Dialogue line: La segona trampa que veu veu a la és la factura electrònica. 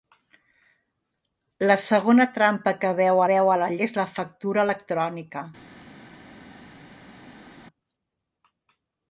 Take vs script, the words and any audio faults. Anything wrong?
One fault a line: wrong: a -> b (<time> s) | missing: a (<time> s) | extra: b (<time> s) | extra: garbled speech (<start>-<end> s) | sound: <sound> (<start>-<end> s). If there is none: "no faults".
no faults